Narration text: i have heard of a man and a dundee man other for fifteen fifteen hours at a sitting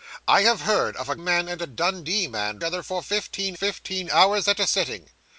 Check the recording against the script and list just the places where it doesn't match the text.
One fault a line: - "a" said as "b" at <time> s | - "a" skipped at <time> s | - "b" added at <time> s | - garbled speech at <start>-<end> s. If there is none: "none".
none